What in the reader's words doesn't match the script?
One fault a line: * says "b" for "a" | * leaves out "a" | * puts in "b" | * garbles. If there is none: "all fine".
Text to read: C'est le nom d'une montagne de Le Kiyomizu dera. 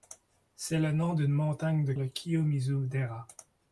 all fine